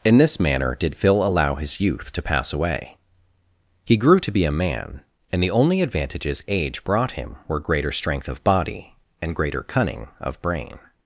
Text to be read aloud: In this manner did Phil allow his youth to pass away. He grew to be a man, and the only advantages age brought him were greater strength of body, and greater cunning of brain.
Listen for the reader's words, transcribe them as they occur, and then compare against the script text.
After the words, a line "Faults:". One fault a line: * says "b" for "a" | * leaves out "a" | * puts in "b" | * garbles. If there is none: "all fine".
In this manner did Phil allow his youth to pass away. He grew to be a man, and the only advantages age brought him were greater strength of body, and greater cunning of brain.
Faults:
all fine